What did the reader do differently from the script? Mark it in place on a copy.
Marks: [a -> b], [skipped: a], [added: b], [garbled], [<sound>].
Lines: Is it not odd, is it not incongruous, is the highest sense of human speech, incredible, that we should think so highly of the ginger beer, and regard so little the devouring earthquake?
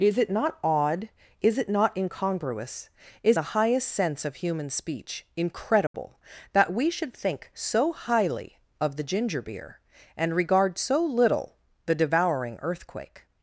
Is it not odd, is it not incongruous, is the highest sense of human speech, incredible, [dropout] that we should think so highly of the ginger beer, and regard so little the devouring earthquake?